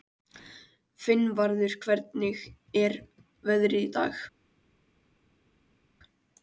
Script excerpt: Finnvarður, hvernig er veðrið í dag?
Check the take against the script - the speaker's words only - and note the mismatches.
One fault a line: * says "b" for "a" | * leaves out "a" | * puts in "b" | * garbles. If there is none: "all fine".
all fine